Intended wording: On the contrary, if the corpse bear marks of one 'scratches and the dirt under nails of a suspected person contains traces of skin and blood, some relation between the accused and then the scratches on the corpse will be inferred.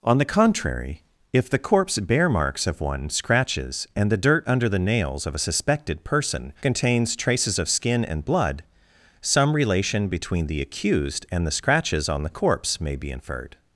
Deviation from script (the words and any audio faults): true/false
true